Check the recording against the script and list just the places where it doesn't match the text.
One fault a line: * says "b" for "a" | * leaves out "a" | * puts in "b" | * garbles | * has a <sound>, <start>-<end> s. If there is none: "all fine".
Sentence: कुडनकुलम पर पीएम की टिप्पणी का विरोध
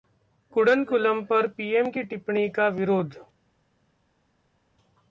all fine